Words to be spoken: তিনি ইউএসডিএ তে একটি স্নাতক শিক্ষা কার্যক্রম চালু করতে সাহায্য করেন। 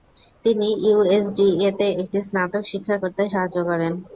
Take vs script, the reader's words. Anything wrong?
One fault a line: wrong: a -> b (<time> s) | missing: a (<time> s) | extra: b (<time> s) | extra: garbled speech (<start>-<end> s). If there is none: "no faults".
missing: কার্যক্রম চালু (3.0 s)